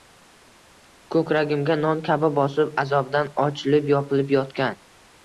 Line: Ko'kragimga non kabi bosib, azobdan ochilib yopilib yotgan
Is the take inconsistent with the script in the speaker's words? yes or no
no